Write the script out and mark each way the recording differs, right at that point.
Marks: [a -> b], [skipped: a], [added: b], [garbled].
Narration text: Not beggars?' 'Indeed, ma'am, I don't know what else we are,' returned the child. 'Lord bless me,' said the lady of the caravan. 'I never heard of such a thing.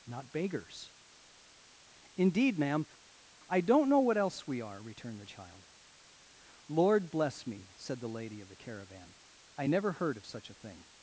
Not beggars?' 'Indeed, ma'am, I don't know what else we are,' returned the child. 'Lord bless me,' said the lady of the caravan. 'I never heard of such a thing.